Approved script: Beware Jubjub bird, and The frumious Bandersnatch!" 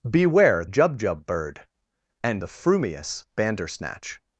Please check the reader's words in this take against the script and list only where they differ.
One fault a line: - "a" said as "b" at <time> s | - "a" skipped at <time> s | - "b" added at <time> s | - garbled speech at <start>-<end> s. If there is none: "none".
none